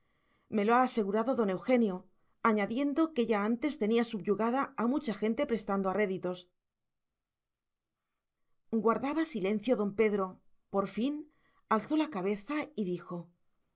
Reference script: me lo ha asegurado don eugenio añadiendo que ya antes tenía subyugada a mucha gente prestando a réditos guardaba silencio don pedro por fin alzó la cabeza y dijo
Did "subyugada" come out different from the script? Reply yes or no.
no